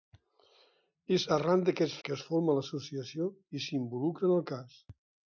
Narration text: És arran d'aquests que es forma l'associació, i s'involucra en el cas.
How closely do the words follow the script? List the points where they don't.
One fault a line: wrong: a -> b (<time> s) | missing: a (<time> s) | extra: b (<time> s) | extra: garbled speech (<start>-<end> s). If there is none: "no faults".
no faults